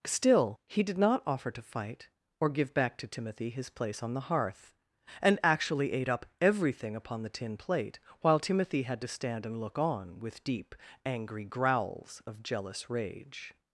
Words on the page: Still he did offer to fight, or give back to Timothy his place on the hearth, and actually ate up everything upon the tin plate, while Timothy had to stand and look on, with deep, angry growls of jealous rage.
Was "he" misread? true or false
false